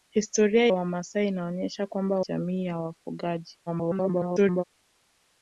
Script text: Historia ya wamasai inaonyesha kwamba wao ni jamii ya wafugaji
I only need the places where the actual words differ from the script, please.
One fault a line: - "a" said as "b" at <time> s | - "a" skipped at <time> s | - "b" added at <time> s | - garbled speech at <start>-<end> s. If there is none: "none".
- "ya" skipped at 0.7 s
- "wao ni" skipped at 2.2 s
- garbled speech at 3.7-4.6 s